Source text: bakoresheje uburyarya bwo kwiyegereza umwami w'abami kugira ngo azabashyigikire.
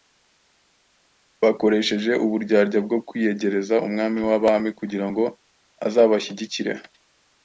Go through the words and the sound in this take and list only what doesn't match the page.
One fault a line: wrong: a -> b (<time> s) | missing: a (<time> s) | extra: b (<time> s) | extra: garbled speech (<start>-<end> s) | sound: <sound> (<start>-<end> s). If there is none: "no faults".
no faults